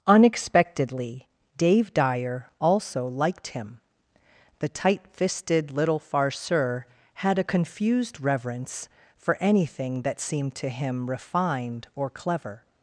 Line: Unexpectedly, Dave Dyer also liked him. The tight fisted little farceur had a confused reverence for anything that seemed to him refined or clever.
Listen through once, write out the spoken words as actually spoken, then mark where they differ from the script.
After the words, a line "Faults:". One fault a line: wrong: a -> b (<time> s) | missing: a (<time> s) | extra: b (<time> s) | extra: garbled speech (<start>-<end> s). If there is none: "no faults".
Unexpectedly, Dave Dyer also liked him. The tight fisted little farceur had a confused reverence for anything that seemed to him refined or clever.
Faults:
no faults